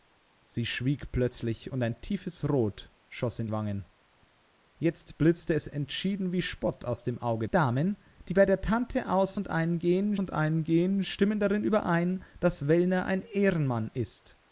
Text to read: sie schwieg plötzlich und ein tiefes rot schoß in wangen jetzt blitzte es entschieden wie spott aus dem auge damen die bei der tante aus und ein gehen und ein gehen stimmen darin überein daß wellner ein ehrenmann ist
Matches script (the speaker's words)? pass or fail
pass